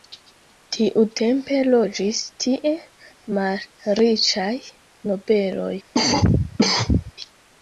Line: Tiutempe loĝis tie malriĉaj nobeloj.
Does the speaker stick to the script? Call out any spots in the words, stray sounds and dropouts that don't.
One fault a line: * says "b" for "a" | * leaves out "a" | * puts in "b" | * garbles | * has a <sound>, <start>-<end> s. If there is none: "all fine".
* has a cough, 5.9-7.1 s